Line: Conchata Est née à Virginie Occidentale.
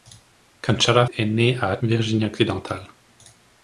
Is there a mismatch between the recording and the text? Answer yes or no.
no